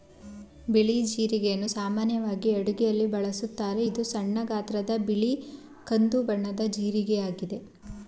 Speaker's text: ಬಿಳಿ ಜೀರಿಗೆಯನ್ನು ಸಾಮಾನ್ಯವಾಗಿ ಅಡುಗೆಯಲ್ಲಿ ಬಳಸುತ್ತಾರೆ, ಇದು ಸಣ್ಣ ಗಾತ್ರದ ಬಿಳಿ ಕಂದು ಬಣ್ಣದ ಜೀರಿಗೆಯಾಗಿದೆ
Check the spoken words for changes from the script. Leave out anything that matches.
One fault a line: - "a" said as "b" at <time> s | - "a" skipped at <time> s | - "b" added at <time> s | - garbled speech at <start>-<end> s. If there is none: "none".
none